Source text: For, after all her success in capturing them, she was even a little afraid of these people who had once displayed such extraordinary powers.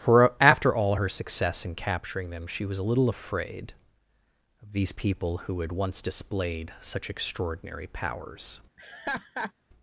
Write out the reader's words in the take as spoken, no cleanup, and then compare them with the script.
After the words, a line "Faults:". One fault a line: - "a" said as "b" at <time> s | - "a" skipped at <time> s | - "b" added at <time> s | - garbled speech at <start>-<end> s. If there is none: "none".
For, after all her success in capturing them, she was a little afraid of these people who had once displayed such extraordinary powers.
Faults:
- "even" skipped at 2.8 s